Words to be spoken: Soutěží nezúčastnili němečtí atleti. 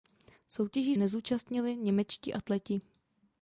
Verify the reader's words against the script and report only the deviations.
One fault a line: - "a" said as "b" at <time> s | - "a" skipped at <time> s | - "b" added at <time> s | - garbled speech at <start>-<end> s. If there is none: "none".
none